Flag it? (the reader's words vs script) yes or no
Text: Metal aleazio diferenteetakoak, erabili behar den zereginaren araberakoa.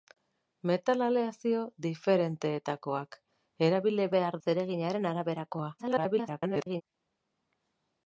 yes